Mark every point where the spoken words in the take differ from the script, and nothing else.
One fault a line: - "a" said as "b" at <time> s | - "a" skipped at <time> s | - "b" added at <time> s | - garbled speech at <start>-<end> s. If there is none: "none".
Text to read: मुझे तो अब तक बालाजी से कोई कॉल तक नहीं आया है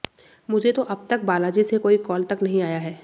none